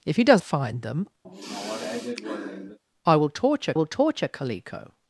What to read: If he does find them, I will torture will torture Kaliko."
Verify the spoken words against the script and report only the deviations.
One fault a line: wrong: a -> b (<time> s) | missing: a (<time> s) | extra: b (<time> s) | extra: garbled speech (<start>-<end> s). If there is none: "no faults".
no faults